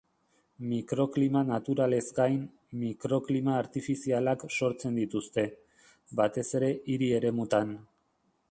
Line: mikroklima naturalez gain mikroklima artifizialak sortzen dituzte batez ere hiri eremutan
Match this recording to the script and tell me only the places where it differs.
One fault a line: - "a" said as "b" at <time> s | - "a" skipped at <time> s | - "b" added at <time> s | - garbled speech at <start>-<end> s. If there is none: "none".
none